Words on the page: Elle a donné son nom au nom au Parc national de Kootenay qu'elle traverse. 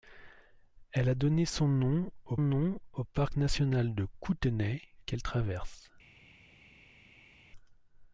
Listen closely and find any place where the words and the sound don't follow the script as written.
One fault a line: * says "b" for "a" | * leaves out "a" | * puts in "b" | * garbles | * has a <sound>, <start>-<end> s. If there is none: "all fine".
all fine